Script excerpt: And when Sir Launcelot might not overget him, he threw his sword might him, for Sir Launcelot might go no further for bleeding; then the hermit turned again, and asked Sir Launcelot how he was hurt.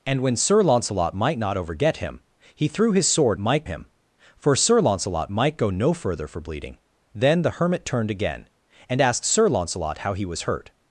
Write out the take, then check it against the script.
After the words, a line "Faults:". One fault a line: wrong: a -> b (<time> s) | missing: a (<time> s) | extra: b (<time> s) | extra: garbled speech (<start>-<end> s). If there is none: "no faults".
And when Sir Launcelot might not overget him, he threw his sword might him, for Sir Launcelot might go no further for bleeding; then the hermit turned again, and asked Sir Launcelot how he was hurt.
Faults:
no faults